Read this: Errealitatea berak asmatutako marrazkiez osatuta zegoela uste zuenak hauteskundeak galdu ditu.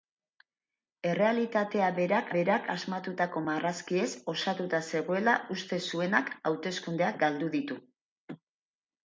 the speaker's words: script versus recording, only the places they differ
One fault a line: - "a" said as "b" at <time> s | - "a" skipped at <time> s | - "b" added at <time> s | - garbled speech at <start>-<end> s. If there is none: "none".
- "berak" added at 2.4 s